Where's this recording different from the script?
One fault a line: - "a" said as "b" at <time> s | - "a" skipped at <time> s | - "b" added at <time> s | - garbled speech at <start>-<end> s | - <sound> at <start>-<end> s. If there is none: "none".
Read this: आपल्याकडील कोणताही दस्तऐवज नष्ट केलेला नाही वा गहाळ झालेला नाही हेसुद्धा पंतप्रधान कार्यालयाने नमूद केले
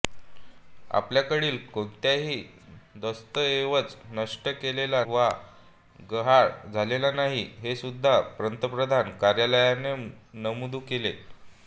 - "नाही" skipped at 5.0 s